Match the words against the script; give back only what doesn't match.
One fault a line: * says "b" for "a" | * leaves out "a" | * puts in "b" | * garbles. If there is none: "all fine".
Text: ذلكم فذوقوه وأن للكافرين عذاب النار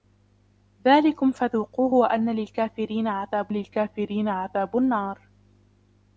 * puts in "للكافرين عذاب"